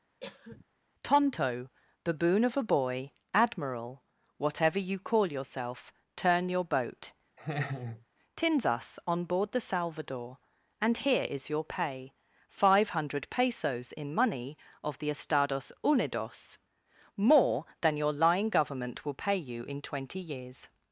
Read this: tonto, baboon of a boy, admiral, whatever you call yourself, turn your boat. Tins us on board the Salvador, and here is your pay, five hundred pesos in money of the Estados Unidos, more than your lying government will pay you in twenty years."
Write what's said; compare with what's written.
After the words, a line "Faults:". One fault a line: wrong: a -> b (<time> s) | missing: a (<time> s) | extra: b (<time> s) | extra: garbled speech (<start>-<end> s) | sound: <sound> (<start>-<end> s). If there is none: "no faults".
tonto, baboon of a boy, admiral, whatever you call yourself, turn your boat. Tins us on board the Salvador, and here is your pay, five hundred pesos in money of the Estados Unidos, more than your lying government will pay you in twenty years."
Faults:
sound: cough (0.2-0.7 s)
sound: laugh (7.4-8.0 s)